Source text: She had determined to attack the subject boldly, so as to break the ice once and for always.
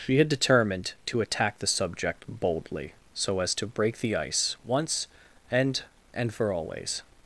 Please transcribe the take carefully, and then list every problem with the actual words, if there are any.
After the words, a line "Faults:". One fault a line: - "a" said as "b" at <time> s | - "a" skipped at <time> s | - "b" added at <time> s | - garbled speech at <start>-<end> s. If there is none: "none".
She had determined to attack the subject boldly, so as to break the ice once and and for always.
Faults:
- "and" added at 6.1 s